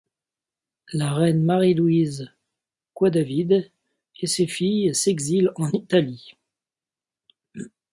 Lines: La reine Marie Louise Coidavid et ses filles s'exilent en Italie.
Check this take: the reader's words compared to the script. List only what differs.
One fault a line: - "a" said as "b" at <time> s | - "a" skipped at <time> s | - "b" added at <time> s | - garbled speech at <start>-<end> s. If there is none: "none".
none